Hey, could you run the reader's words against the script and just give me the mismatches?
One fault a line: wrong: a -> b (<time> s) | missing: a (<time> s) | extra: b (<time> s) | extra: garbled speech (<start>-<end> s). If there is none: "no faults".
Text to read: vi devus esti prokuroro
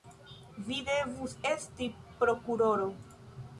no faults